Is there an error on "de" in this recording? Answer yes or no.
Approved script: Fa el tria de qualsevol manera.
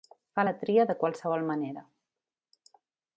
no